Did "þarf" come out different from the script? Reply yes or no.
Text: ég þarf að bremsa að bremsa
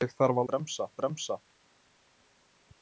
no